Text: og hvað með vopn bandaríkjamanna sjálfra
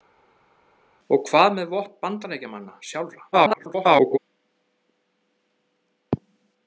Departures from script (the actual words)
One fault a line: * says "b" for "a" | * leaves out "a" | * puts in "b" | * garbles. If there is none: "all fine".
* garbles